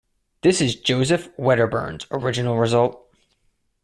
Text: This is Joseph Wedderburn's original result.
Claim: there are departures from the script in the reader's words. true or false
false